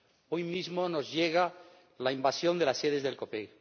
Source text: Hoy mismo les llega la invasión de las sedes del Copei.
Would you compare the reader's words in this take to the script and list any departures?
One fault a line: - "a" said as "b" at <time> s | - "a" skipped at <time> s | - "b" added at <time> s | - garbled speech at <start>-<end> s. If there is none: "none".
- "les" said as "nos" at 0.9 s